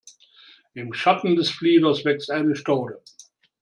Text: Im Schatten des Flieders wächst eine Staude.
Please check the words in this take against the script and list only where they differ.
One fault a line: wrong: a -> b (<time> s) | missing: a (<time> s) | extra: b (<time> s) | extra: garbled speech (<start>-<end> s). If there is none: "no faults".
no faults